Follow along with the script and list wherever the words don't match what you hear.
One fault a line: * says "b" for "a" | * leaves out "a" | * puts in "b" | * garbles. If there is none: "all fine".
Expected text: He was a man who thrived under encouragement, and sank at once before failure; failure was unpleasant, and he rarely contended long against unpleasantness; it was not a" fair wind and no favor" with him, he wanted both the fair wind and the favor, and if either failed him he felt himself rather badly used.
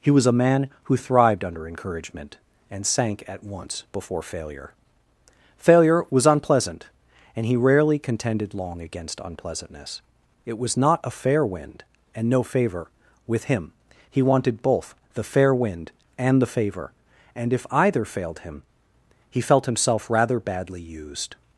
all fine